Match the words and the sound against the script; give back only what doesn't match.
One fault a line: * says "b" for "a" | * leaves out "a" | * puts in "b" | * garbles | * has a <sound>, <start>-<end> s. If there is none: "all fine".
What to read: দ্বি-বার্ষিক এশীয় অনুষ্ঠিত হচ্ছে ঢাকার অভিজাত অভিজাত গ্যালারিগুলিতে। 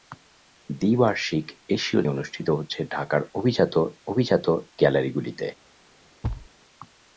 * has a thud, 6.2-6.5 s